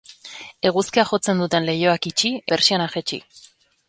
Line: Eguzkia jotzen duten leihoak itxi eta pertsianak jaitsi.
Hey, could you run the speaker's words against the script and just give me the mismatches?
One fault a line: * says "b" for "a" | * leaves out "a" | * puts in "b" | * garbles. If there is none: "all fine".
* leaves out "eta"